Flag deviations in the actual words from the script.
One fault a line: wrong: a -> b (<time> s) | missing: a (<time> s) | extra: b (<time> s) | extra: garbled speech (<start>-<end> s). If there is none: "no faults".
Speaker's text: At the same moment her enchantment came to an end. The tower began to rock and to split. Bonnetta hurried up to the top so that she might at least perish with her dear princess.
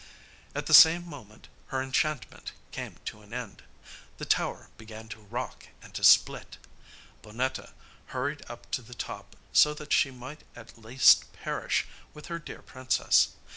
no faults